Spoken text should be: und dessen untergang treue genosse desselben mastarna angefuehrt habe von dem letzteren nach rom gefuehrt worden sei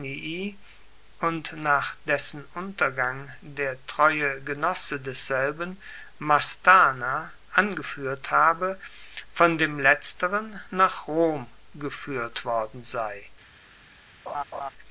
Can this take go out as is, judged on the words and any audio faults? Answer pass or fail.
fail